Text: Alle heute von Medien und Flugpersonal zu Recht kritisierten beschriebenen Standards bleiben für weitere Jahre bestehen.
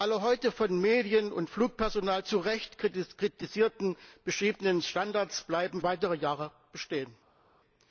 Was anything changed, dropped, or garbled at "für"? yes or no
yes